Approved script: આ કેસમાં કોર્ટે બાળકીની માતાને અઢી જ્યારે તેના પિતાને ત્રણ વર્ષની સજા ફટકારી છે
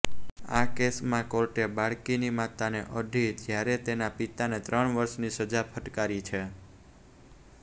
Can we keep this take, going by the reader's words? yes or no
yes